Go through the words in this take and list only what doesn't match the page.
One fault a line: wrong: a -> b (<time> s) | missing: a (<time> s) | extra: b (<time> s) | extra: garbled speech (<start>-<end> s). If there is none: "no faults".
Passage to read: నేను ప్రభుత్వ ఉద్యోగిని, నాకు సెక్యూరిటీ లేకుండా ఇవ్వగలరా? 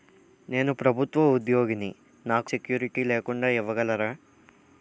no faults